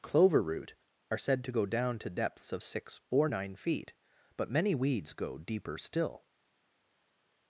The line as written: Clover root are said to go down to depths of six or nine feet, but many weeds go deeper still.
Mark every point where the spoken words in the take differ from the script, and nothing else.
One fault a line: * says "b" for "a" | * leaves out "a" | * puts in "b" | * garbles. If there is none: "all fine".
all fine